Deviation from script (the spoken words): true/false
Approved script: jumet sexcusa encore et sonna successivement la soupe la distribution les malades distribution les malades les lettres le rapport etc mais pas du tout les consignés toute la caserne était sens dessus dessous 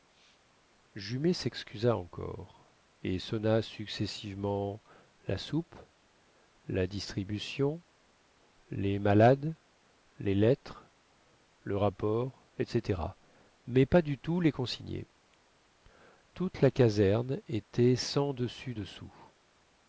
true